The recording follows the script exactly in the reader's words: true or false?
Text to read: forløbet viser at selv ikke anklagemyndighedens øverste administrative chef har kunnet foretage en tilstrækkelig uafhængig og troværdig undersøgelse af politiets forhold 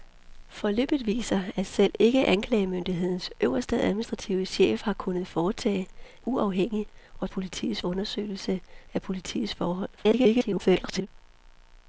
false